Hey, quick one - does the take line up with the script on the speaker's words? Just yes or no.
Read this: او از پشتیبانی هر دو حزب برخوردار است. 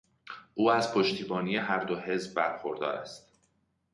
yes